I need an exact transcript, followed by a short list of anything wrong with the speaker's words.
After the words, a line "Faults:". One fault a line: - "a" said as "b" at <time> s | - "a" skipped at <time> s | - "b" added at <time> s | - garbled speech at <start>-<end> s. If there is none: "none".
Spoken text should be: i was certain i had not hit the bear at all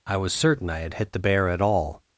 i was certain i had hit the bear at all
Faults:
- "not" skipped at 0.9 s